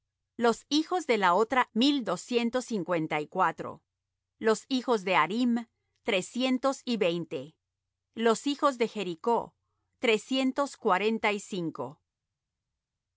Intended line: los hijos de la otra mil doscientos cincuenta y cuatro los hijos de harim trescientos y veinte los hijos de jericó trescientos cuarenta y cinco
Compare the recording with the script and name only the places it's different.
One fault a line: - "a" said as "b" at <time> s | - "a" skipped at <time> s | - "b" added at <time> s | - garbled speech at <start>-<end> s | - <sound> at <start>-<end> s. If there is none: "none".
none